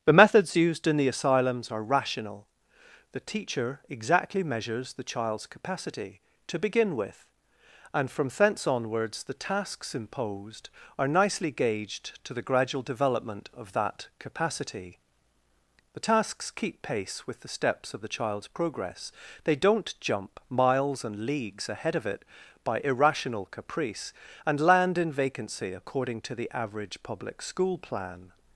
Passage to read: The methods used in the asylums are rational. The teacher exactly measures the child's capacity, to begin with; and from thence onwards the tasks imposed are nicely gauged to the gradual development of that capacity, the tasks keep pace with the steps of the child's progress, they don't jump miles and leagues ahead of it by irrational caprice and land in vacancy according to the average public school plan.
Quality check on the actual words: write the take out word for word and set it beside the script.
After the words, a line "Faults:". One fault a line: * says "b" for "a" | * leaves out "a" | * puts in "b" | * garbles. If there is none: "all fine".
The methods used in the asylums are rational. The teacher exactly measures the child's capacity, to begin with; and from thence onwards the tasks imposed are nicely gauged to the gradual development of that capacity, the tasks keep pace with the steps of the child's progress, they don't jump miles and leagues ahead of it by irrational caprice and land in vacancy according to the average public school plan.
Faults:
all fine